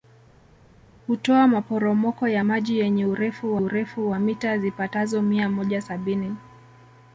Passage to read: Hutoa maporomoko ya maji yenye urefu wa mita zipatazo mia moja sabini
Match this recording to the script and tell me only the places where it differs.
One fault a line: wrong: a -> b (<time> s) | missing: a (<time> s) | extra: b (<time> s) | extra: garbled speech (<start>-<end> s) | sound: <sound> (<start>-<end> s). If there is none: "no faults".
extra: urefu (3.6 s)